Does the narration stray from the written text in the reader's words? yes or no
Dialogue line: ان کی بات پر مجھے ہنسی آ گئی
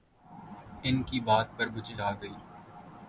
yes